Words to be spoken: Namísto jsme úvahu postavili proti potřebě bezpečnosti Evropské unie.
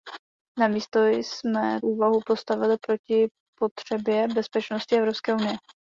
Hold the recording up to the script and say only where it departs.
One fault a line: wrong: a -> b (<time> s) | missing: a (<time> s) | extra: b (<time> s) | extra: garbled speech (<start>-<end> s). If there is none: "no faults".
no faults